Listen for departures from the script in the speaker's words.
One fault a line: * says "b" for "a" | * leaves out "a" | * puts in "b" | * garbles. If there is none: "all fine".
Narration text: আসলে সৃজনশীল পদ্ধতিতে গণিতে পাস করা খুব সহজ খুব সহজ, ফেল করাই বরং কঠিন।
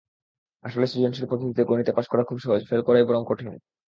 * leaves out "খুব সহজ"